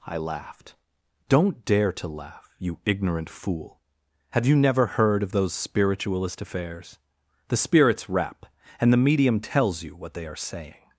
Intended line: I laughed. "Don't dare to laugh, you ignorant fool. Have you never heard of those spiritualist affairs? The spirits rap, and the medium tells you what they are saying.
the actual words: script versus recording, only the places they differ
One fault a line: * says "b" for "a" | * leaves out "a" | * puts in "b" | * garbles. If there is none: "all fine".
all fine